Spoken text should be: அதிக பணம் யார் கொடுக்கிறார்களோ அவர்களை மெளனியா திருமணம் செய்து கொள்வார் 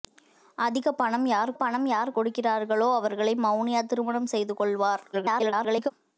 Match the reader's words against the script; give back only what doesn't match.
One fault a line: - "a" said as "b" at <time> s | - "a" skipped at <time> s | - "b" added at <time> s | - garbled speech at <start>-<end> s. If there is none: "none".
- "பணம் யார்" added at 1.5 s
- garbled speech at 5.1-5.9 s